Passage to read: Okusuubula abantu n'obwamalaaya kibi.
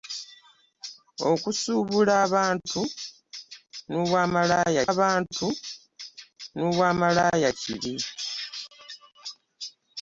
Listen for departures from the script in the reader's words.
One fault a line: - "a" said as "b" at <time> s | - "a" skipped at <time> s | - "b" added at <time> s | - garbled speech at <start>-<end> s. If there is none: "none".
- "abantu n'obwamalaaya" added at 4.9 s